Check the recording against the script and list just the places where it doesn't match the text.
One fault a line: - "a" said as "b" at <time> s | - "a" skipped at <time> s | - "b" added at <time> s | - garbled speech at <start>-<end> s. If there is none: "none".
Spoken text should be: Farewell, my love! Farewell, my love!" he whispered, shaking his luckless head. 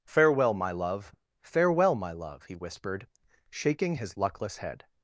none